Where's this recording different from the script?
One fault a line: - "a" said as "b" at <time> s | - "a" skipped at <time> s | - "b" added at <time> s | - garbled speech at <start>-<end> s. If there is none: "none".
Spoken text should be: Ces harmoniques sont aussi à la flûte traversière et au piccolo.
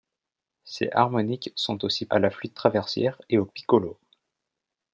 none